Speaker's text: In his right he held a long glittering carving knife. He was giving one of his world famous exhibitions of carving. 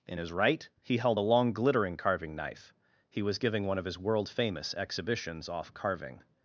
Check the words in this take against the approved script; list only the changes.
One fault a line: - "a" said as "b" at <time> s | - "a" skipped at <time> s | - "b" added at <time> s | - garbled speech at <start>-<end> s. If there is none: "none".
- "of" said as "off" at 5.5 s